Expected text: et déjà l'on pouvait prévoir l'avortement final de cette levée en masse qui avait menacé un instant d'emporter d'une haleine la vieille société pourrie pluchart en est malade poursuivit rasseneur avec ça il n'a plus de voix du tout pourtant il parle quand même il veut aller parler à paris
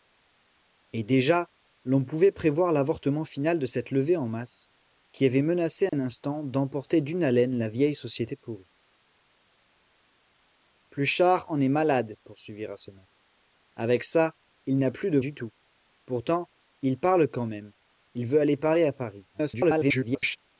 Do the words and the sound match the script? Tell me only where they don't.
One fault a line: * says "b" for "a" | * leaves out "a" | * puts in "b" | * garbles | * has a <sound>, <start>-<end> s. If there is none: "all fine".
* has a dropout, 5.9-5.9 s
* leaves out "voix"
* garbles